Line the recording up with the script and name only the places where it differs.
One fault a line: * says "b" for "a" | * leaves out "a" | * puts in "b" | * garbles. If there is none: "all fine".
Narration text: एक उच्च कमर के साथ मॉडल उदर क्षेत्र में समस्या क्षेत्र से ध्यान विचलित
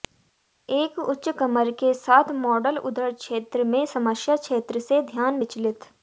all fine